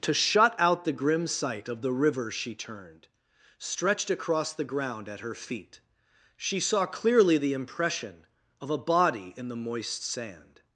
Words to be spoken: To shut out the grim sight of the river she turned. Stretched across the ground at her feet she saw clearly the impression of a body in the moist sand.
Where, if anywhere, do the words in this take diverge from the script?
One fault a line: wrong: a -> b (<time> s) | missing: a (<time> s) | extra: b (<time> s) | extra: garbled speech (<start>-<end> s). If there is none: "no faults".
no faults